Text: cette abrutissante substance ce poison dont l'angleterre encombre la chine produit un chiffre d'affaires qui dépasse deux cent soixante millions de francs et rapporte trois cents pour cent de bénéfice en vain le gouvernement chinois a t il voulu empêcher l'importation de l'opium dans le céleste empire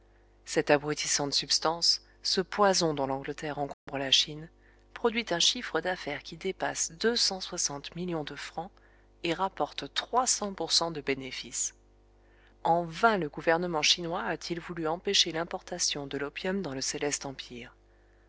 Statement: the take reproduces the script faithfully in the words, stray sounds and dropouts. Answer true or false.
false